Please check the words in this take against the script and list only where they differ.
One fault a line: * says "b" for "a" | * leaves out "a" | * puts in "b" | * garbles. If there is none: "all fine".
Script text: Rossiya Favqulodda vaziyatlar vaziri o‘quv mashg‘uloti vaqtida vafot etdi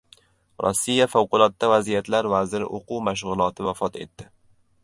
* leaves out "vaqtida"